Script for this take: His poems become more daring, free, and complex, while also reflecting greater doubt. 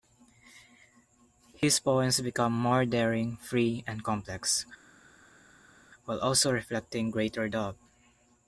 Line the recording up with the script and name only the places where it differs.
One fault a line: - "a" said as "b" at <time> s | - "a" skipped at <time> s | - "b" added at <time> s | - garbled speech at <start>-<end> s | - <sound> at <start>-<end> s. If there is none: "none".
none